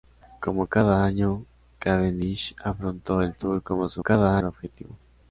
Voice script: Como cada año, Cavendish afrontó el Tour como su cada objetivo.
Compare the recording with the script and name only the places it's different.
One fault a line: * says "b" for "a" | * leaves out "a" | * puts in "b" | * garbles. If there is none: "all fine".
all fine